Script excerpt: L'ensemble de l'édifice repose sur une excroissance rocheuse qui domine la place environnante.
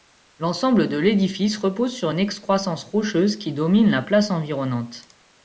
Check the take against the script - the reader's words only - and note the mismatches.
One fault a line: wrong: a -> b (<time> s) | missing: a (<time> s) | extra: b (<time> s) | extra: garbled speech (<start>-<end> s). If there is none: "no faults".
no faults